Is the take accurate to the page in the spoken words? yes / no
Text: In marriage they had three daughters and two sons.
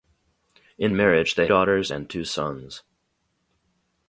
no